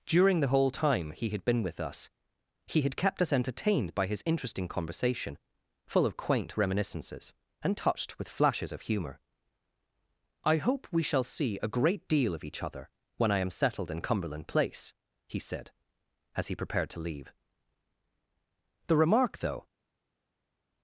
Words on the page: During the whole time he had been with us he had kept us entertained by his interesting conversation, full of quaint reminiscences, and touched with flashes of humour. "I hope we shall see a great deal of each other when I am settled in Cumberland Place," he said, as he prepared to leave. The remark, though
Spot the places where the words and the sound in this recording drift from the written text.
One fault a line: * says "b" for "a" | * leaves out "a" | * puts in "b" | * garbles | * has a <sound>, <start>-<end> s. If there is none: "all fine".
all fine